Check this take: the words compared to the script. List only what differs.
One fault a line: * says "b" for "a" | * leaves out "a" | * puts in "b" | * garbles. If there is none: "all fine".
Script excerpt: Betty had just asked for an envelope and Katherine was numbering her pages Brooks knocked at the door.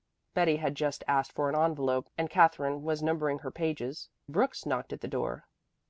all fine